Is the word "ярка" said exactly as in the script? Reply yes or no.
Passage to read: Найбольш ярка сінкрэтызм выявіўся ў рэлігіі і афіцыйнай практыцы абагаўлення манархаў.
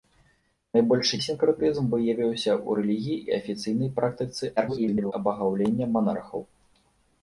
no